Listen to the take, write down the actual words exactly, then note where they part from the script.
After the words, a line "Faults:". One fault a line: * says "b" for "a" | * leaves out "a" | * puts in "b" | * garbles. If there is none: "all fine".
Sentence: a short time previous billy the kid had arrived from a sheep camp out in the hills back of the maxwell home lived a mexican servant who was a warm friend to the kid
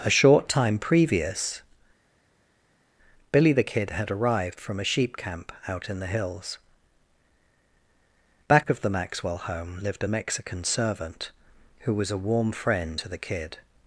a short time previous billy the kid had arrived from a sheep camp out in the hills back of the maxwell home lived a mexican servant who was a warm friend to the kid
Faults:
all fine